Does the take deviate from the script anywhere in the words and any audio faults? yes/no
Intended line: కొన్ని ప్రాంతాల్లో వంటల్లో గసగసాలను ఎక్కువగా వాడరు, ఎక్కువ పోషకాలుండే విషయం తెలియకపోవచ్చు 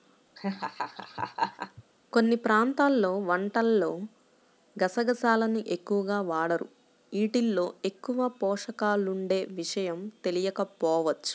yes